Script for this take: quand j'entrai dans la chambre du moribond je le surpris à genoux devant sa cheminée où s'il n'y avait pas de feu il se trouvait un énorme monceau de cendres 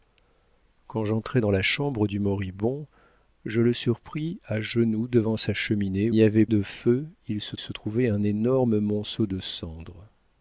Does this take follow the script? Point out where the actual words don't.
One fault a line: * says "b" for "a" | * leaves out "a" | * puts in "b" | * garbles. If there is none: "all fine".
* leaves out "où s'il"
* leaves out "pas"
* puts in "se"